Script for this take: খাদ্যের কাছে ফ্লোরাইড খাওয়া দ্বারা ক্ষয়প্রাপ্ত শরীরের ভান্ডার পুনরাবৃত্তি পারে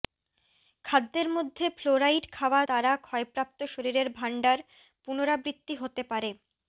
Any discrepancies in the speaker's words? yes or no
yes